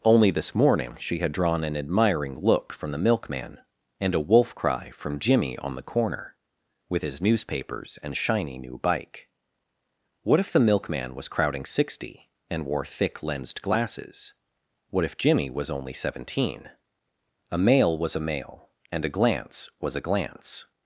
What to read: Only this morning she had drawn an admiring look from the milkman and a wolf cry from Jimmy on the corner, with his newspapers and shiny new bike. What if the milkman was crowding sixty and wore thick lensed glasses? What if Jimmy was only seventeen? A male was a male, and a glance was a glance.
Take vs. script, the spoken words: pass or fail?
pass